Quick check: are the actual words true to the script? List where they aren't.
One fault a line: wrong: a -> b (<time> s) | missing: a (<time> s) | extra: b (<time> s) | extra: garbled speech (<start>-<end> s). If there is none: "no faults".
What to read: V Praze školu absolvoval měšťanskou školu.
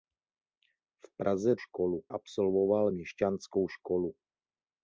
no faults